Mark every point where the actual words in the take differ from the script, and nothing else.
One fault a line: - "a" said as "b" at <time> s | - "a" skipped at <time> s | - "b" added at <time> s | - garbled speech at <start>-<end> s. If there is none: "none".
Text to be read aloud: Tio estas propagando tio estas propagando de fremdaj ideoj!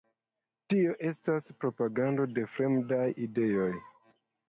- "tio estas propagando" skipped at 2.3 s